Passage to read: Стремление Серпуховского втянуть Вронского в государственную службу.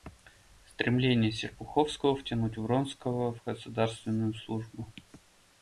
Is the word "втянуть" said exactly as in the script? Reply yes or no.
yes